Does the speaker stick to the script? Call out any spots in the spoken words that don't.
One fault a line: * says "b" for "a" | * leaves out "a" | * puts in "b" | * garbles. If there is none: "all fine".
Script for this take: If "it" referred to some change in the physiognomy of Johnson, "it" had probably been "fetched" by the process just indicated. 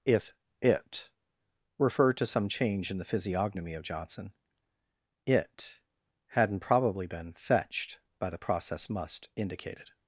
* says "hadn't" for "had"
* says "must" for "just"